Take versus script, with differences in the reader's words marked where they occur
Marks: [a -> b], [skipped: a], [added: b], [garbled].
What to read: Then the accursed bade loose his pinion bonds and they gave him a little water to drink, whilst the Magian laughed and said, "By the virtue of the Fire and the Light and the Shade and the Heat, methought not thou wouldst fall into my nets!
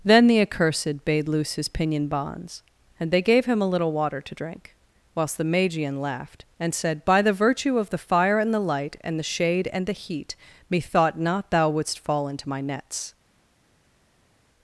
Then the accursed bade loose his pinion bonds and they gave him a little water to drink, whilst the Magian laughed and said, "By the virtue of the Fire and the Light and the Shade and the Heat, methought not thou wouldst fall into my nets!